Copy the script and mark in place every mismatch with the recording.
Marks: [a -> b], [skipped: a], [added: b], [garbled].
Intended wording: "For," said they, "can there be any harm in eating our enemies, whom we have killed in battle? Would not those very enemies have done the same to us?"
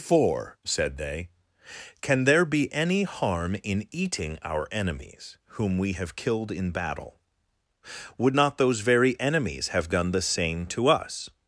"For," said they, "can there be any harm in eating our enemies, whom we have killed in battle? Would not those very enemies have done the same to us?"